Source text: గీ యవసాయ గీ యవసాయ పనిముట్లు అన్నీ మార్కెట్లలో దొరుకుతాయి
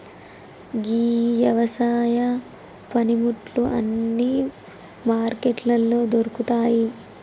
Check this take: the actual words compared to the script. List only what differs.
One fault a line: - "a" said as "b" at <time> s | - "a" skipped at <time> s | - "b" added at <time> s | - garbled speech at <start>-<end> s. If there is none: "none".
- "గీ యవసాయ" skipped at 2.2 s